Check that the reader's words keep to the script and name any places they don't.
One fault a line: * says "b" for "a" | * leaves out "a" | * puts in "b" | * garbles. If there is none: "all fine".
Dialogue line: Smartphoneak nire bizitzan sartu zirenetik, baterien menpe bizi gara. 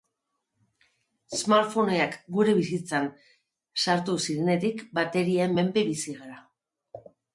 * says "gure" for "nire"